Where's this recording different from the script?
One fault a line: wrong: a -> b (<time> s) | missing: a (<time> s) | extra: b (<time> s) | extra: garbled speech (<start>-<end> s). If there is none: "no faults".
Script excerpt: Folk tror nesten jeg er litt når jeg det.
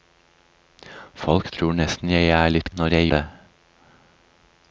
no faults